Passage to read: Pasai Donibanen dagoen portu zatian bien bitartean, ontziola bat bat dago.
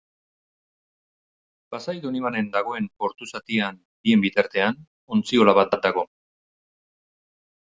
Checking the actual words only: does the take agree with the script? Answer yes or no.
yes